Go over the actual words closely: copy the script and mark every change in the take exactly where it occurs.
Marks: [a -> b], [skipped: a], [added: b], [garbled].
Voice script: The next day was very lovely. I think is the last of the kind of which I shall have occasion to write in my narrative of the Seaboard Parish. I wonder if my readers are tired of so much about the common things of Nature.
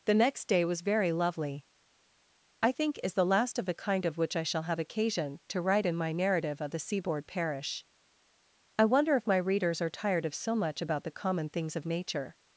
The next day was very lovely. I think is the last of the kind of which I shall have occasion to write in my narrative of the Seaboard Parish. I wonder if my readers are tired of so much about the common things of Nature.